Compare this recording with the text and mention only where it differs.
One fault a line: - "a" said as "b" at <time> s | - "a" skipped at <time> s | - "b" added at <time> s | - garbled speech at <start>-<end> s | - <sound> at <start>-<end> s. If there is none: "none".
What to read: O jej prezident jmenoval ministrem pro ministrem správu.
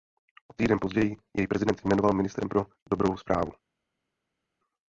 - "týden později" added at 0.5 s
- "ministrem" said as "dobrou" at 2.9 s